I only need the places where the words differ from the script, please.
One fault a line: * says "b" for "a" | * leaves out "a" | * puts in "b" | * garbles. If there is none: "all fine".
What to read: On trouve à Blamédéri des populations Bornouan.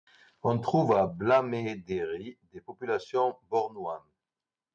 all fine